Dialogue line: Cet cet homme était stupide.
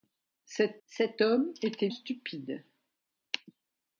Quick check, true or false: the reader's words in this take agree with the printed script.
true